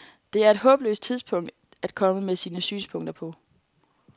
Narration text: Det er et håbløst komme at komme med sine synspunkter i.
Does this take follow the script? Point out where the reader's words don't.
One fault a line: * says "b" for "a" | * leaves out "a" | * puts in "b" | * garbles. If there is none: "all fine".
* says "tidspunkt" for "komme"
* says "på" for "i"